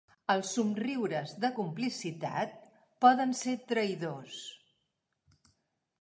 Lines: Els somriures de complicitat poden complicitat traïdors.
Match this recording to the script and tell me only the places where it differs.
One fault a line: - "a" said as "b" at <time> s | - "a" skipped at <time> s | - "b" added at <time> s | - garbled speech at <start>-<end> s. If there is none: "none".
- "complicitat" said as "ser" at 3.4 s